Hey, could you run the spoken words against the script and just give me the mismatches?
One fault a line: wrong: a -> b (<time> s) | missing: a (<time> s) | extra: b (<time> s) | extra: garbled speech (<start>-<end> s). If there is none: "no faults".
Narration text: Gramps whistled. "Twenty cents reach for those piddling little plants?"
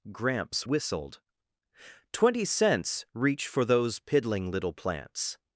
no faults